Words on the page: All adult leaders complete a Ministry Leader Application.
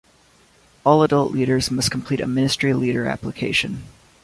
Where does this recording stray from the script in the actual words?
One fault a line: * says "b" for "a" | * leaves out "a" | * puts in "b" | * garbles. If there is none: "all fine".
* puts in "must"